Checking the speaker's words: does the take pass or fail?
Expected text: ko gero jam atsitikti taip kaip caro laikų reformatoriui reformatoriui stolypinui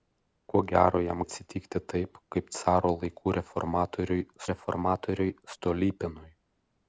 pass